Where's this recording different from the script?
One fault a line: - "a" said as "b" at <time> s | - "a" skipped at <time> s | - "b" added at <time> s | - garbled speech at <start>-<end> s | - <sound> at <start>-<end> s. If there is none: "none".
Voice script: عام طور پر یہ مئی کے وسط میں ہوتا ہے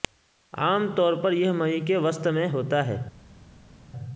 none